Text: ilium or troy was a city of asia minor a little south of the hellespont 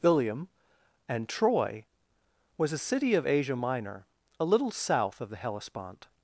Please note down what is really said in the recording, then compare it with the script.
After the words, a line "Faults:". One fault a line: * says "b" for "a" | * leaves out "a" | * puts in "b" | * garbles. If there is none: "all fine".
ilium and troy was a city of asia minor a little south of the hellespont
Faults:
* says "and" for "or"